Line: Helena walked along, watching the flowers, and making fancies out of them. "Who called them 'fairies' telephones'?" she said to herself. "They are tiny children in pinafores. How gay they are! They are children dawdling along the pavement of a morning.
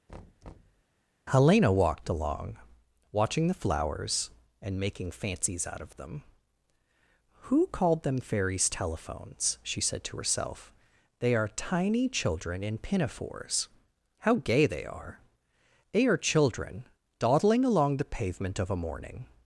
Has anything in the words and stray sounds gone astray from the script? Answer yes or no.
yes